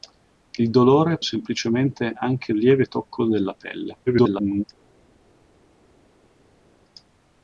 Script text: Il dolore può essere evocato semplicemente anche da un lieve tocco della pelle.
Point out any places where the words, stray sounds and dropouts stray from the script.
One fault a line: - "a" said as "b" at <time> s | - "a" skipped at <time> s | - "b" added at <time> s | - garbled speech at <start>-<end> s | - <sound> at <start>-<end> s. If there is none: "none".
- "può essere evocato" skipped at 1.2 s
- "da un" skipped at 2.5 s
- garbled speech at 4.1-4.6 s